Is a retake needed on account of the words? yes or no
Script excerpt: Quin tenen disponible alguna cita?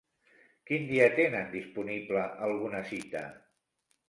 yes